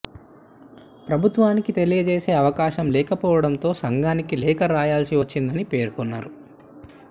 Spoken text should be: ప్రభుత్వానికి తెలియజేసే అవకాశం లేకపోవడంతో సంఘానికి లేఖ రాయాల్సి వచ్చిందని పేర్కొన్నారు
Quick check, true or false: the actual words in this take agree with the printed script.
true